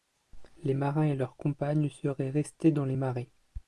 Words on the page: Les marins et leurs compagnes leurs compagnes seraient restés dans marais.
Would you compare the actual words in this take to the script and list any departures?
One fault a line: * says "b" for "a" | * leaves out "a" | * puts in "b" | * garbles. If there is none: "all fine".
* leaves out "leurs compagnes"
* puts in "les"